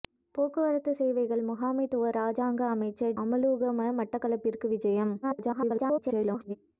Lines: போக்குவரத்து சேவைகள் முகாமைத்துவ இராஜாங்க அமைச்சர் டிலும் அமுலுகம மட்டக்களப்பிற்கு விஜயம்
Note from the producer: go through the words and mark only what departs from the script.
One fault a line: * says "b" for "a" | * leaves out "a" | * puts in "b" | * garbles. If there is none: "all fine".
* leaves out "டிலும்"
* garbles